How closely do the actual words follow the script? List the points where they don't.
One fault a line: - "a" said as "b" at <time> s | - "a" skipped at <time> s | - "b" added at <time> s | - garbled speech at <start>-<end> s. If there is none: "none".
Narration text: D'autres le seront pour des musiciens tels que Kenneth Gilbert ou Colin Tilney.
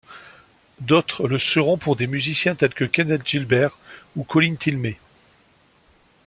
none